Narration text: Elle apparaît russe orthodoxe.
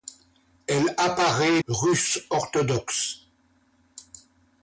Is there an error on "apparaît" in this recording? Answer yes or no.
no